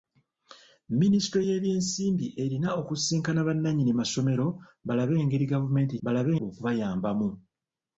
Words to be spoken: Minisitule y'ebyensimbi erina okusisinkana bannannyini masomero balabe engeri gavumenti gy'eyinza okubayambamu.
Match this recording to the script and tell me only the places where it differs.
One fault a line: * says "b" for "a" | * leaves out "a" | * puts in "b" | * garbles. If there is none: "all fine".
* says "balabe" for "gy'eyinza"